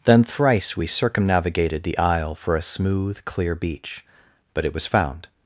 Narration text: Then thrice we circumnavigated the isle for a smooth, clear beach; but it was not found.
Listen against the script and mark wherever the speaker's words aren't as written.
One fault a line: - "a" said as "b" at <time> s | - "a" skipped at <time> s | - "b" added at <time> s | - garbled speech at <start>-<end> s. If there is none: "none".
- "not" skipped at 4.9 s